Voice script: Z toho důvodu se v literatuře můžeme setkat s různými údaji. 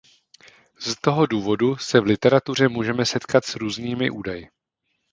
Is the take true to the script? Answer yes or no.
yes